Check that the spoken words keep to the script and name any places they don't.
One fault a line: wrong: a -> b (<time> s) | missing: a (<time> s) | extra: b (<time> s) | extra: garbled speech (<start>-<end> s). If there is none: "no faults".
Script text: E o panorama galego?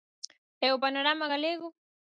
no faults